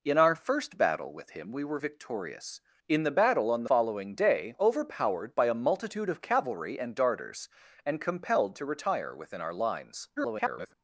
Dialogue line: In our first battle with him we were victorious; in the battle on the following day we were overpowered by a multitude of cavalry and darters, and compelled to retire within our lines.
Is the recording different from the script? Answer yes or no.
yes